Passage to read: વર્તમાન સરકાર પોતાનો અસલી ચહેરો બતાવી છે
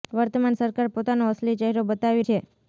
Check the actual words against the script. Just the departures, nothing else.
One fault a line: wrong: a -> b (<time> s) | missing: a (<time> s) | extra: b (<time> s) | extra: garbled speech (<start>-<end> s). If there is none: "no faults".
no faults